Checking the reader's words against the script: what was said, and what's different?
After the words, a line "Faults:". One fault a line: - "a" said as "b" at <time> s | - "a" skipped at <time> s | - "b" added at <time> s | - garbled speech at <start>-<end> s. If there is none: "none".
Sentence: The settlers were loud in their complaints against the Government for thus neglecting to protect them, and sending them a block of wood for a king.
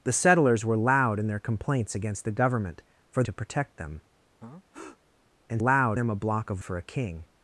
The settlers were loud in their complaints against the Government for to protect them, and loud them a block of for a king.
Faults:
- "thus neglecting" skipped at 3.2 s
- "sending" said as "loud" at 5.6 s
- "wood" skipped at 6.6 s